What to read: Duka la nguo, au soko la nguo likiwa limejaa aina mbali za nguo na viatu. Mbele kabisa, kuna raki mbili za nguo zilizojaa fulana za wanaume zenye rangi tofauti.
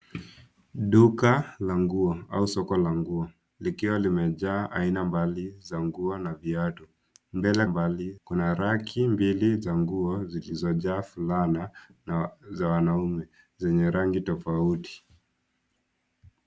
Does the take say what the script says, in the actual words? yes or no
no